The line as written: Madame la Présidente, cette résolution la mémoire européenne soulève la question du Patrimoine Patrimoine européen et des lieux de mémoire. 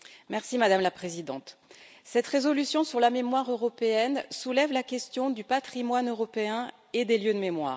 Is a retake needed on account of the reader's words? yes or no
yes